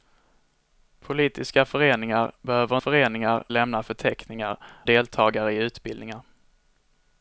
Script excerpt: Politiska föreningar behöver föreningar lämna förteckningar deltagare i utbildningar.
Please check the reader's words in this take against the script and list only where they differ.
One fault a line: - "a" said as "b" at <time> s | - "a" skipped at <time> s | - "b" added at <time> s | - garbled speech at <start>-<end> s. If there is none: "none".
none